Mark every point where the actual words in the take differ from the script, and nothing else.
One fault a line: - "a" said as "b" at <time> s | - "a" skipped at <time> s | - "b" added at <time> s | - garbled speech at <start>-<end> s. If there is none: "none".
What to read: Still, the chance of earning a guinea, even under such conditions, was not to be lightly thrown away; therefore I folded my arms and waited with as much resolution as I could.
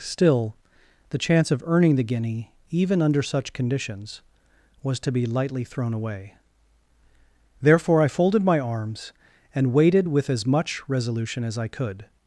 - "a" said as "the" at 1.9 s
- "not" skipped at 5.0 s